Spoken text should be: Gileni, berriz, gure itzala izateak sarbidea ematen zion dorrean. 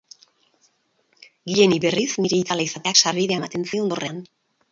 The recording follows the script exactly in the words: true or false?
false